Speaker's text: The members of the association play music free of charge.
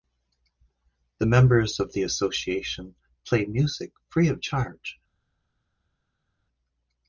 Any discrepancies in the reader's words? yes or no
no